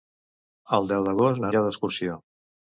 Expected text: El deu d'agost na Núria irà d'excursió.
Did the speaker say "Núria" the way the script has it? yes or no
no